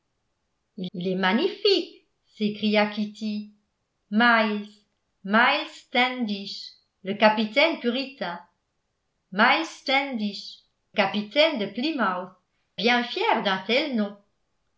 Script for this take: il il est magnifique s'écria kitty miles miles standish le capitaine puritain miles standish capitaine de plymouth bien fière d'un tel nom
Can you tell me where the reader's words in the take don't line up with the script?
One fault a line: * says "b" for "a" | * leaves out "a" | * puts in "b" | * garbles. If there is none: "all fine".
all fine